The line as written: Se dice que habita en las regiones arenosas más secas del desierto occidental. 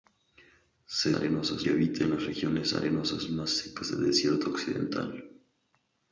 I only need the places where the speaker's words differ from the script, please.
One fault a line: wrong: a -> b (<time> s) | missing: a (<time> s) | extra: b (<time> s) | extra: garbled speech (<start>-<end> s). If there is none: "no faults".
wrong: dice -> arenosas (1.1 s)